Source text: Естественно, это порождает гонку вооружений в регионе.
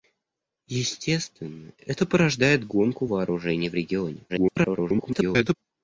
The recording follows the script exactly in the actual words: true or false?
false